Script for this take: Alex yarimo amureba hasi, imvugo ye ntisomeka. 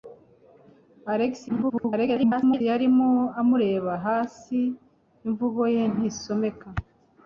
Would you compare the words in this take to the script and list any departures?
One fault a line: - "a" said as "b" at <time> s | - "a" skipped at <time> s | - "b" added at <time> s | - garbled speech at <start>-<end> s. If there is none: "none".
- garbled speech at 1.5-2.6 s